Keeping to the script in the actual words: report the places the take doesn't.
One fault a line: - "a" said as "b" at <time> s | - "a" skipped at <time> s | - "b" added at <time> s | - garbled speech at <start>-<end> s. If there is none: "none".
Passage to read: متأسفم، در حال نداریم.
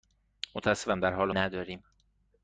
none